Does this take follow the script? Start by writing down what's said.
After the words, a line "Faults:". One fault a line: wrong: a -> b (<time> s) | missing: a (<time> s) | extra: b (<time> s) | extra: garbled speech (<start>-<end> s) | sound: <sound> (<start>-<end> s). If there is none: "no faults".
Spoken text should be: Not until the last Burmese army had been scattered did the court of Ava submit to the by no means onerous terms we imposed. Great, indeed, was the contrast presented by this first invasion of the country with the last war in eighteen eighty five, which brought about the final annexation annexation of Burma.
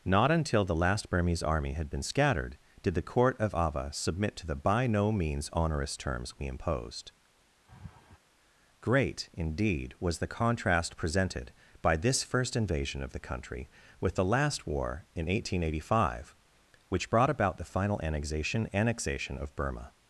Not until the last Burmese army had been scattered did the court of Ava submit to the by no means onerous terms we imposed. Great, indeed, was the contrast presented by this first invasion of the country with the last war in eighteen eighty five, which brought about the final annexation annexation of Burma.
Faults:
sound: laugh (7.7-8.2 s)